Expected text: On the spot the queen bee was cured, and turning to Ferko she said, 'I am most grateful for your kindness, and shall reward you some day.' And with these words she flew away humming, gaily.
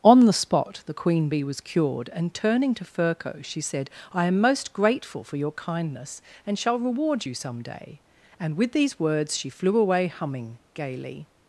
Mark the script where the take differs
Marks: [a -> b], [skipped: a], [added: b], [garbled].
On the spot the queen bee was cured, and turning to Ferko she said, 'I am most grateful for your kindness, and shall reward you some day.' And with these words she flew away humming, gaily.